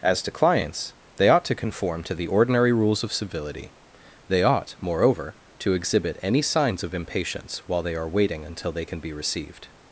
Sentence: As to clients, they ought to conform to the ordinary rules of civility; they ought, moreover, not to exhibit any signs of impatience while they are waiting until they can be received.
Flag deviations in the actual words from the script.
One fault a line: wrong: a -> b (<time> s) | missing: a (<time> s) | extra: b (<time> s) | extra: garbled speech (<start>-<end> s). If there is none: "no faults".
missing: not (5.4 s)